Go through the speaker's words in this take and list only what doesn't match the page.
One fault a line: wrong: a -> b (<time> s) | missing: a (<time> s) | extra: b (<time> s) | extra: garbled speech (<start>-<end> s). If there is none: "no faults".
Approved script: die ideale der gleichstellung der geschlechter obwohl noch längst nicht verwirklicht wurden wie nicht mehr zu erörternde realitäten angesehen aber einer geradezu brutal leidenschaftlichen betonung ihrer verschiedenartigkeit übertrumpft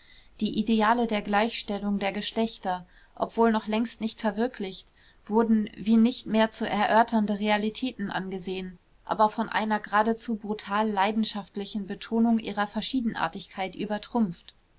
extra: von (9.3 s)